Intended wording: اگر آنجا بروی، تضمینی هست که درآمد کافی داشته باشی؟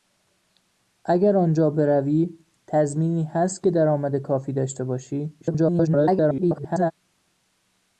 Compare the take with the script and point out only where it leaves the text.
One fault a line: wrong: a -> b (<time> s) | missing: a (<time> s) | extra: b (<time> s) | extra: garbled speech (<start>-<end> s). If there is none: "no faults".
extra: garbled speech (5.4-6.9 s)